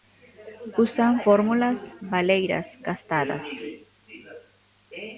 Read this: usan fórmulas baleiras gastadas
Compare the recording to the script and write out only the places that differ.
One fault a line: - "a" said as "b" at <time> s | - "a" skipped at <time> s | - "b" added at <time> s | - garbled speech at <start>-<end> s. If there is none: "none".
none